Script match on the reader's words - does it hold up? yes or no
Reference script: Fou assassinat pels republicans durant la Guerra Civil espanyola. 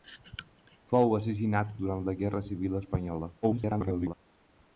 no